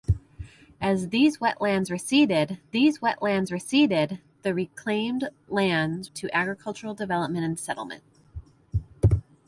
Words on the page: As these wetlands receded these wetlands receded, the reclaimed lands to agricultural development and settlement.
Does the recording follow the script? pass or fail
pass